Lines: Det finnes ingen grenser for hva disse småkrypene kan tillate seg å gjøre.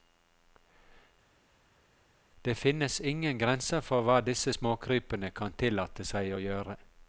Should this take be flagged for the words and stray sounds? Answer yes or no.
no